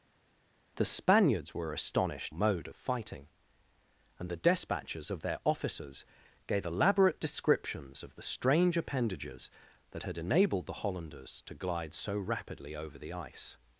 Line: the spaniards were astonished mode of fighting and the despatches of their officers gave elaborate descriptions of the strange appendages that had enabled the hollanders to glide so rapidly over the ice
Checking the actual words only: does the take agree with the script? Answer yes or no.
yes